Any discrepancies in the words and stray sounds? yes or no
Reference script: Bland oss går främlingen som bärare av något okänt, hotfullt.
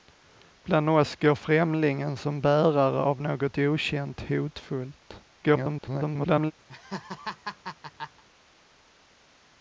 yes